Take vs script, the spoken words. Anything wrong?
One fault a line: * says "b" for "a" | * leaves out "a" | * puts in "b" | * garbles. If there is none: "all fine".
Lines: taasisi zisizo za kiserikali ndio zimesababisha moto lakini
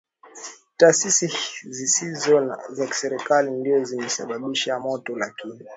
all fine